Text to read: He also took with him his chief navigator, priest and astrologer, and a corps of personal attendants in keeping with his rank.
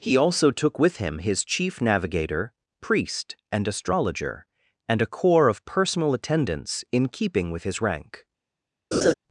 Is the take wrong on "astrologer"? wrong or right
right